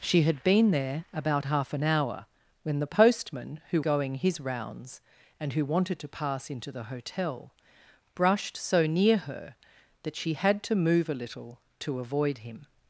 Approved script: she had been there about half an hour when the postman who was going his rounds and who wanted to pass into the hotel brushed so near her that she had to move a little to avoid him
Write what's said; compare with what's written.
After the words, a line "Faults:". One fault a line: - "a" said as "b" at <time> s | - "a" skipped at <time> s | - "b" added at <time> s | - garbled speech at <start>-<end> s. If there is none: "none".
she had been there about half an hour when the postman who going his rounds and who wanted to pass into the hotel brushed so near her that she had to move a little to avoid him
Faults:
- "was" skipped at 3.8 s